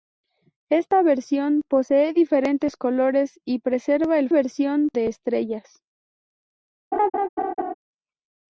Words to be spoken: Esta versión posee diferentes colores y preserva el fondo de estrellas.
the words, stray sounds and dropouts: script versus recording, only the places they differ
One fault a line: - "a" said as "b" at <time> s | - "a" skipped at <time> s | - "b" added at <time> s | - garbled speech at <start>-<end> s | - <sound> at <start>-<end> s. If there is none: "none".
- "fondo" said as "versión" at 4.3 s
- laugh at 6.9-7.7 s